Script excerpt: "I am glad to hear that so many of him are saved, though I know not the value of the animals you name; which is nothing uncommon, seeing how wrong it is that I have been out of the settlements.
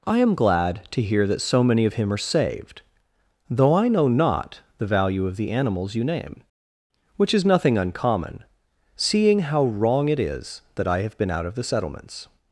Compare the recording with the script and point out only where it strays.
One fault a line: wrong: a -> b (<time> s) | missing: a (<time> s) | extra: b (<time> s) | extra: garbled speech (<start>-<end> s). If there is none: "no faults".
no faults